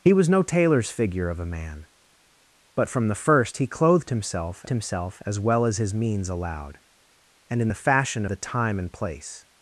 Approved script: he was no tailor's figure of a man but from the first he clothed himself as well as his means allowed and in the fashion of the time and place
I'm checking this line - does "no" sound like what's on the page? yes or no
yes